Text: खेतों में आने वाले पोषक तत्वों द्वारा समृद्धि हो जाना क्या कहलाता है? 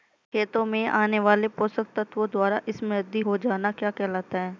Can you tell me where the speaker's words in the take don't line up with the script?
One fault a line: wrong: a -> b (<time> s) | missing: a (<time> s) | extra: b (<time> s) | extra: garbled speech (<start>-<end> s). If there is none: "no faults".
no faults